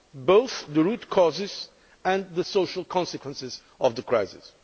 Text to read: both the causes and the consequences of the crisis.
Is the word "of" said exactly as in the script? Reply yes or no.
yes